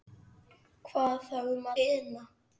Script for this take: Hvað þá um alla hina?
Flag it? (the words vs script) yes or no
yes